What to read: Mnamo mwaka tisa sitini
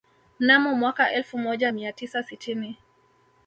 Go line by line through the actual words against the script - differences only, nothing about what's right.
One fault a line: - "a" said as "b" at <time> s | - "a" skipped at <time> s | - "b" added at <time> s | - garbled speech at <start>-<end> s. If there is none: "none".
- "elfu moja mia" added at 1.1 s